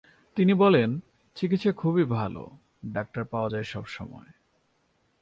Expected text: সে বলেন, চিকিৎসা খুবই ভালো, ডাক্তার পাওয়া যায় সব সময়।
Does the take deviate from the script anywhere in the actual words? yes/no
yes